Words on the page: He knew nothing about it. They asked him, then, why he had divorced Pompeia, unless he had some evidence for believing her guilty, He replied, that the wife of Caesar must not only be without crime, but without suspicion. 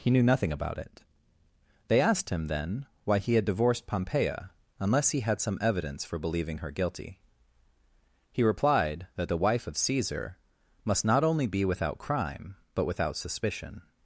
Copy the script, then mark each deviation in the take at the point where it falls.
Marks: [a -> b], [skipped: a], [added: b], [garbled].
He knew nothing about it. They asked him, then, why he had divorced Pompeia, unless he had some evidence for believing her guilty, He replied, that the wife of Caesar must not only be without crime, but without suspicion.